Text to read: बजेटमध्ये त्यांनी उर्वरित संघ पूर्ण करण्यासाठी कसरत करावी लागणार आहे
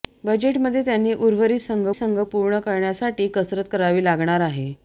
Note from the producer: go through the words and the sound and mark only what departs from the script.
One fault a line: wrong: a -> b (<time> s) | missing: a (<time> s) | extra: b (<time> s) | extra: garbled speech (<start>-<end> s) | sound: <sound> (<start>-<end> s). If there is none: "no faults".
extra: संघ (1.9 s)